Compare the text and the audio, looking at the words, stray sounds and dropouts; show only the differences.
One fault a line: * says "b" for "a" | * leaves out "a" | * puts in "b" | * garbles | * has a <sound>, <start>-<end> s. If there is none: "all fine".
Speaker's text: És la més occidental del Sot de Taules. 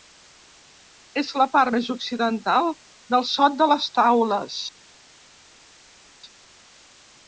* puts in "part"
* puts in "les"